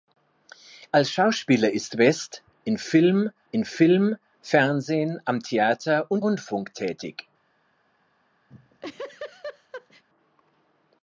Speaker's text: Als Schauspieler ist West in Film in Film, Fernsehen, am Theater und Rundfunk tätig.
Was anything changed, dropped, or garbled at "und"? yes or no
no